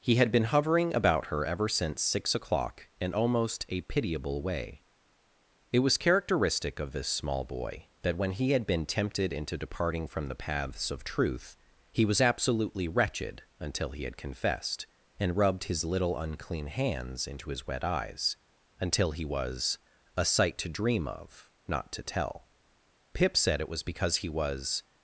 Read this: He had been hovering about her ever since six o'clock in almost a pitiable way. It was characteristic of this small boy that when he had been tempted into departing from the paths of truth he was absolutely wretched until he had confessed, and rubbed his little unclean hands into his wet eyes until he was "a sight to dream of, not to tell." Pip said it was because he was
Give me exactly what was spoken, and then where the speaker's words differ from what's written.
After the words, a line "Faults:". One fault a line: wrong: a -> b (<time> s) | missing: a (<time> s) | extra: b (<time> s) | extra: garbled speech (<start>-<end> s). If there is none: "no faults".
He had been hovering about her ever since six o'clock in almost a pitiable way. It was characteristic of this small boy that when he had been tempted into departing from the paths of truth he was absolutely wretched until he had confessed, and rubbed his little unclean hands into his wet eyes until he was "a sight to dream of, not to tell." Pip said it was because he was
Faults:
no faults